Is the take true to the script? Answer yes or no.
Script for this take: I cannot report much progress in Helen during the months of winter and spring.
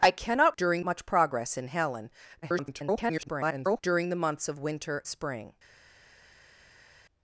no